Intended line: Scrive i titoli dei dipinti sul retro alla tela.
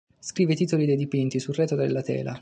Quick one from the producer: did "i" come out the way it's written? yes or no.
yes